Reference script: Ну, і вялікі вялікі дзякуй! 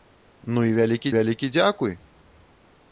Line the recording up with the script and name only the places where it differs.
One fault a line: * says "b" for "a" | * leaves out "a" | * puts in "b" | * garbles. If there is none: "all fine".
all fine